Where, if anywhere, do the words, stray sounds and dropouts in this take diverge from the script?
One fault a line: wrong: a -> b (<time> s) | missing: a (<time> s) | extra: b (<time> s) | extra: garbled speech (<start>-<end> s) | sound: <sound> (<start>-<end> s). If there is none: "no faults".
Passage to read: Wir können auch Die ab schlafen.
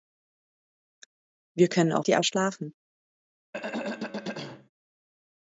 sound: throat clearing (3.5-4.7 s)